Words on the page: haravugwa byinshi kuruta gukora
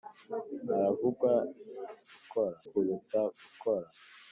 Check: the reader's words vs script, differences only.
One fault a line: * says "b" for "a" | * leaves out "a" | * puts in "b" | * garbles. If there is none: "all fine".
* says "gukora" for "byinshi"